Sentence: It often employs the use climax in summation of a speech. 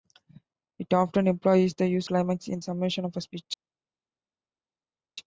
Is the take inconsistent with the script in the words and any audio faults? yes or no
no